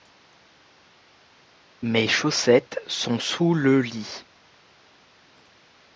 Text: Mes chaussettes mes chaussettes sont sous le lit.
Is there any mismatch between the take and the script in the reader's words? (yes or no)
yes